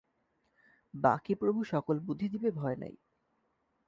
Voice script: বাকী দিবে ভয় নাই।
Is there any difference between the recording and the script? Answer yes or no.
yes